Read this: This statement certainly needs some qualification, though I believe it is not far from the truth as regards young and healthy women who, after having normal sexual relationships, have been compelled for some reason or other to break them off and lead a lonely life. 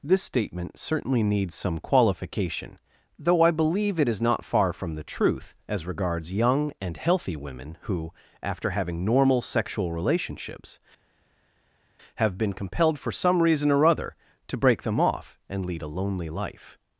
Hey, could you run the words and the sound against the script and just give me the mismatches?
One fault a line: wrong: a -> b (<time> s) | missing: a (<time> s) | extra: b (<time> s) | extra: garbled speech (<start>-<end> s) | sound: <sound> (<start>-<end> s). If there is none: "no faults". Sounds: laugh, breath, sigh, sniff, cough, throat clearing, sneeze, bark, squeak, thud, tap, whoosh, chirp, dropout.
no faults